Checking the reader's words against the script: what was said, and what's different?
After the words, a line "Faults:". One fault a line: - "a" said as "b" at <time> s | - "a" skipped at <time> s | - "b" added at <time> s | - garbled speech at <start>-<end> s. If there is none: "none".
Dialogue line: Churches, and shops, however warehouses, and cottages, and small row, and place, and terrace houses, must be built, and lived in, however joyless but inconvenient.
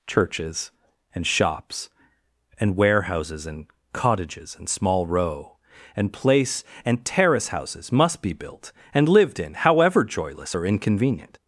Churches, and shops, and warehouses, and cottages, and small row, and place, and terrace houses, must be built, and lived in, however joyless or inconvenient.
Faults:
- "however" said as "and" at 2.6 s
- "but" said as "or" at 10.5 s